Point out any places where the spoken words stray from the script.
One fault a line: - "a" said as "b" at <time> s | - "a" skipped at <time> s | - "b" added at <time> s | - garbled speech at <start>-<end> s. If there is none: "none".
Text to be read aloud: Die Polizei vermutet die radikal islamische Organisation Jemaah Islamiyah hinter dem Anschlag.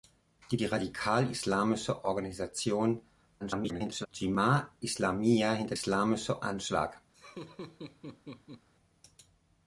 - "Polizei vermutet" skipped at 0.6 s
- garbled speech at 3.4-4.1 s
- "dem" said as "islamische" at 5.7 s